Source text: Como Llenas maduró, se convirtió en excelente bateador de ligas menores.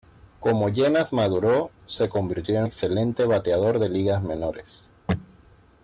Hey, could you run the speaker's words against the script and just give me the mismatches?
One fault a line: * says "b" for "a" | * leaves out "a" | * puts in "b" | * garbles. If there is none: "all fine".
all fine